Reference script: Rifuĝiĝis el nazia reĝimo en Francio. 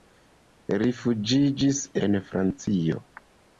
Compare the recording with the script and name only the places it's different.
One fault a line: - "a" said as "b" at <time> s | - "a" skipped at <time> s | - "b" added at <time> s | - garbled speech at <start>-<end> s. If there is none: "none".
- "el nazia reĝimo" skipped at 1.8 s